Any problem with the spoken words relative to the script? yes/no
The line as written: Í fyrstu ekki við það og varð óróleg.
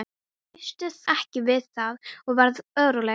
no